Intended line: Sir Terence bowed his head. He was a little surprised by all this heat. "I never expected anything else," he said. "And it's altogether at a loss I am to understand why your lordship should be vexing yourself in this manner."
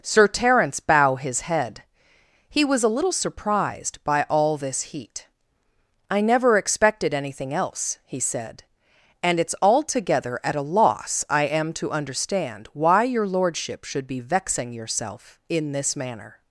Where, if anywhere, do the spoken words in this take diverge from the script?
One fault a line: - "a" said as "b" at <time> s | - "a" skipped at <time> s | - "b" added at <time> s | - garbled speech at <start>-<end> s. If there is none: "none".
- "bowed" said as "bow" at 0.8 s